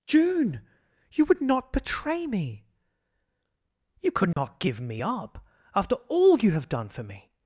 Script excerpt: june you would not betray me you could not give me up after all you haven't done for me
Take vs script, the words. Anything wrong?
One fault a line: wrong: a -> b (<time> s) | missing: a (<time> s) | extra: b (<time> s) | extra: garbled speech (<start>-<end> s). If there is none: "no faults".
wrong: haven't -> have (6.5 s)